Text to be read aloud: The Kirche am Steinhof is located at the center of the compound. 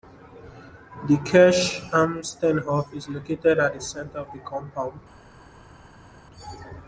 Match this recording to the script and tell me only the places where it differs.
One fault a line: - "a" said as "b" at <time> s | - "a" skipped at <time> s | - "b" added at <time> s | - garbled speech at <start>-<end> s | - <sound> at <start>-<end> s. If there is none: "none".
none